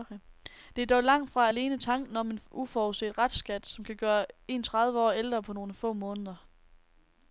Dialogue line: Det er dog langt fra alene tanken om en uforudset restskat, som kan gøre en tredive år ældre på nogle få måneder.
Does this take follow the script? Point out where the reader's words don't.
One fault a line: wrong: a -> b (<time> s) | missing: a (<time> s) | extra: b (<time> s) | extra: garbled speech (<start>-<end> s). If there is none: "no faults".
no faults